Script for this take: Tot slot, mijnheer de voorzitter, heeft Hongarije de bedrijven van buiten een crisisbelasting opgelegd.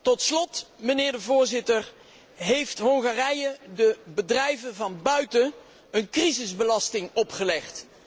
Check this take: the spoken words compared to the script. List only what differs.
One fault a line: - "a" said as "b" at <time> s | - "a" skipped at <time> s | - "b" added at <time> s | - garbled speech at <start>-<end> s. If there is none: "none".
none